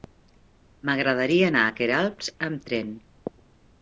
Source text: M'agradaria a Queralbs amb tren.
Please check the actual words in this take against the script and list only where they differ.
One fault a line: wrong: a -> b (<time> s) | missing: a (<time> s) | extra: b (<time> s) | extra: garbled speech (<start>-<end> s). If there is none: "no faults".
extra: anar (1.5 s)